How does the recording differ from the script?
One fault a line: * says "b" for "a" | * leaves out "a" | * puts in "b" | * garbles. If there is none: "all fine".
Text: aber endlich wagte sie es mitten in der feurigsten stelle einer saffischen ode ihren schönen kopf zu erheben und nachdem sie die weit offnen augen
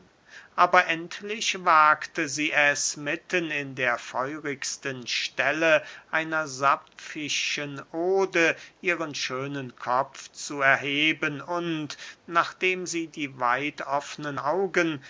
all fine